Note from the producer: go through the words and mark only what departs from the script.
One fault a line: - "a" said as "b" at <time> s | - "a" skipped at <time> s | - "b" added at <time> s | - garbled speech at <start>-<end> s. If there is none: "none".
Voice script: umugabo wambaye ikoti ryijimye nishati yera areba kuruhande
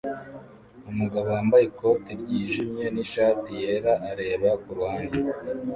none